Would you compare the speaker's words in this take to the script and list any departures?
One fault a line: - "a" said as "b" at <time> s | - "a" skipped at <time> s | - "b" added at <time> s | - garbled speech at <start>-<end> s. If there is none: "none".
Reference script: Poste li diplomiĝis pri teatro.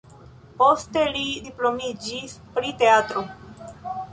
none